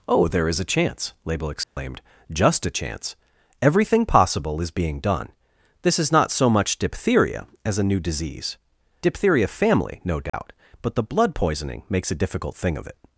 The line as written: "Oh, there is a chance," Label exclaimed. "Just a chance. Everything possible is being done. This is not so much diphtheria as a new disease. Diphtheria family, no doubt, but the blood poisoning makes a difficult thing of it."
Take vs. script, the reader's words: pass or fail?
pass